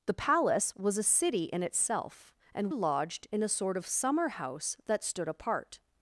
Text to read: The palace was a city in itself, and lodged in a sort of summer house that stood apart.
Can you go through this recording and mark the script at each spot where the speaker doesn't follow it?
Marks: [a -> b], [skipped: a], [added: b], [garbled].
The palace was a city in itself, and lodged in a sort of summer house that stood apart.